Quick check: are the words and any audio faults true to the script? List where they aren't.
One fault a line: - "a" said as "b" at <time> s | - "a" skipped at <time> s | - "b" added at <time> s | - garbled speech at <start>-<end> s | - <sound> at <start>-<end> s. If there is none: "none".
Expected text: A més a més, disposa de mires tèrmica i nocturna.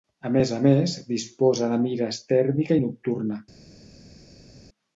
none